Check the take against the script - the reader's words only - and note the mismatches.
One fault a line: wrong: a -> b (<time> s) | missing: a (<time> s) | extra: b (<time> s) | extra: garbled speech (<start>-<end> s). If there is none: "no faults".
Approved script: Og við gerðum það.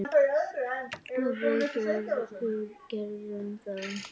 no faults